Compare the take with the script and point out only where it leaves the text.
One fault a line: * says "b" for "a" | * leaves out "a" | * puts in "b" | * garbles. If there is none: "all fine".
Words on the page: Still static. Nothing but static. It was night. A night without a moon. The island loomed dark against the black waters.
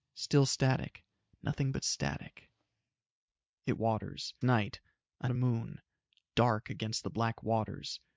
* says "waters" for "was"
* leaves out "night without"
* leaves out "The island loomed"